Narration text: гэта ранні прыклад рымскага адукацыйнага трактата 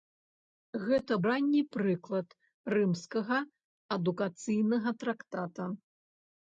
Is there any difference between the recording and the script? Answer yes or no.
no